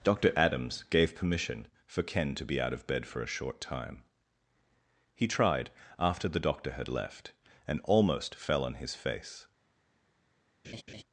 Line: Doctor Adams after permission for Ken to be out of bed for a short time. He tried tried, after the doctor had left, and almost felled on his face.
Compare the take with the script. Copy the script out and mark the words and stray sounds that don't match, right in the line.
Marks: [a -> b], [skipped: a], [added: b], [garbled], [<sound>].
Doctor Adams [after -> gave] permission for Ken to be out of bed for a short time. He tried [skipped: tried,] after the doctor had left, and almost [felled -> fell] on his face. [laugh]